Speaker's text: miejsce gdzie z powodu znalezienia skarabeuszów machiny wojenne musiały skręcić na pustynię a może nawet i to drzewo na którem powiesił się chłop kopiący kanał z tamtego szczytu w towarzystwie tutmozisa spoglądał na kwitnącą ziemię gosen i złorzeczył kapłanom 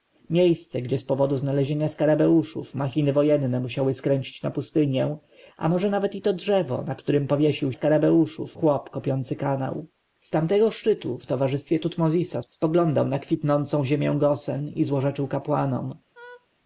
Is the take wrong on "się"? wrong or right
wrong